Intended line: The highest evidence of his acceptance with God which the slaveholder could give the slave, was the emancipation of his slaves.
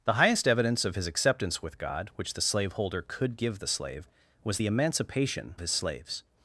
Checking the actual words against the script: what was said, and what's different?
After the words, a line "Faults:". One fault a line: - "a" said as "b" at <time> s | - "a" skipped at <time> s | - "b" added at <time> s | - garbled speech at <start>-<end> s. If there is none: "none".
The highest evidence of his acceptance with God which the slaveholder could give the slave, was the emancipation his slaves.
Faults:
- "of" skipped at 5.6 s